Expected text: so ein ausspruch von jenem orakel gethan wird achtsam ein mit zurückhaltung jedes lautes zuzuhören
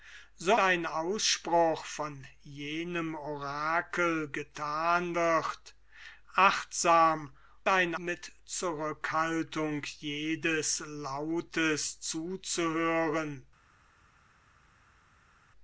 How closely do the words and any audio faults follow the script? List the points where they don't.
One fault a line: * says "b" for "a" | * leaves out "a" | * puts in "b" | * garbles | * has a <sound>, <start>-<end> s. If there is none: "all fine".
all fine